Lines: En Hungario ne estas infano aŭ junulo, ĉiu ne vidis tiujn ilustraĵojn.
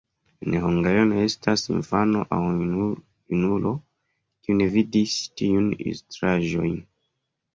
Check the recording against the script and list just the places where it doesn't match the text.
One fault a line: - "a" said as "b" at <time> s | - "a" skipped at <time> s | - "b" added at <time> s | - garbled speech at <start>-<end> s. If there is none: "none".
- "ĉiu" said as "kiu" at 4.5 s